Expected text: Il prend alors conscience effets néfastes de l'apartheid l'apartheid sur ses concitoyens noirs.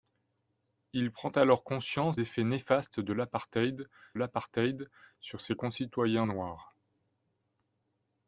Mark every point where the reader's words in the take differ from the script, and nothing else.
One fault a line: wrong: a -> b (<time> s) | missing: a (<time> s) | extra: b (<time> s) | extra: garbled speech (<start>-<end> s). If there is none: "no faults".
no faults